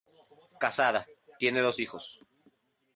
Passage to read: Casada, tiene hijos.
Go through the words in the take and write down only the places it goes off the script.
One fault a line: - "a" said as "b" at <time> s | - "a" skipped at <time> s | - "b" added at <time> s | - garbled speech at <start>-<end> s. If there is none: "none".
- "dos" added at 1.6 s